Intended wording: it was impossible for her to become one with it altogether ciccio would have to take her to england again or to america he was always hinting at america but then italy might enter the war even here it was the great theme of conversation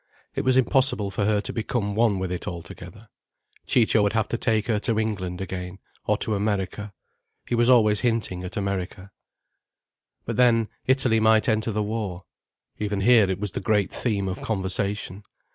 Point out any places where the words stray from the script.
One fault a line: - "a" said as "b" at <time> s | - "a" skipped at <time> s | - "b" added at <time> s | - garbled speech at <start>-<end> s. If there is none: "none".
none